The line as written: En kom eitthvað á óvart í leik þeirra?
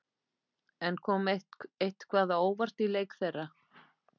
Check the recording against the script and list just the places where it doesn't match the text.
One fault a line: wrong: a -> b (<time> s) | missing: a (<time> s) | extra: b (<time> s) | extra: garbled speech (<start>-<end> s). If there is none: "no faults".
no faults